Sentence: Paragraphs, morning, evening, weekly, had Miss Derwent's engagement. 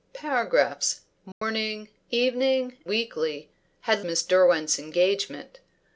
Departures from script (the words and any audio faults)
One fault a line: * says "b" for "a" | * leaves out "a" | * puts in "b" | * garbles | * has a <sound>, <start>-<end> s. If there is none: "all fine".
* has a dropout, 1.3-1.4 s